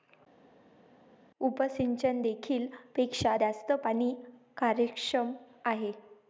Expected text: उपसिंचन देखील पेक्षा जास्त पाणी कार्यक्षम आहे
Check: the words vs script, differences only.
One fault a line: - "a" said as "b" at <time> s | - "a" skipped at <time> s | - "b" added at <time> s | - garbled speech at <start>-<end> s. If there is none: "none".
none